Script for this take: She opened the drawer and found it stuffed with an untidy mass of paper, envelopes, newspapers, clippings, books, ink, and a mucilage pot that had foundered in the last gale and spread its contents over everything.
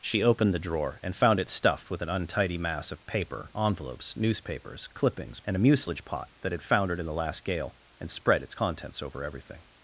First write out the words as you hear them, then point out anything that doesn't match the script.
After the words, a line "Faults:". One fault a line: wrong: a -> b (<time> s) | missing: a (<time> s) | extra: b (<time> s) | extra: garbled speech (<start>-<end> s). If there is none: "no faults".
She opened the drawer and found it stuffed with an untidy mass of paper, envelopes, newspapers, clippings, and a mucilage pot that had foundered in the last gale and spread its contents over everything.
Faults:
missing: books ink (5.4 s)